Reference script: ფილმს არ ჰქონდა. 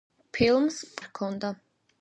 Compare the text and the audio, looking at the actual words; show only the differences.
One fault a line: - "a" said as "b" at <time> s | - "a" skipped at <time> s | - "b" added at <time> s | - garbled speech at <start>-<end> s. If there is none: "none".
none